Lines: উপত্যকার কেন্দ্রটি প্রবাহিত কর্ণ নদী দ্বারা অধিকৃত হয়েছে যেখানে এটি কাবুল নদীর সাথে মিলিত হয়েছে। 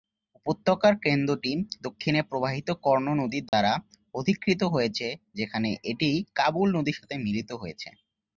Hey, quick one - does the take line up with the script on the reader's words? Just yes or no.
no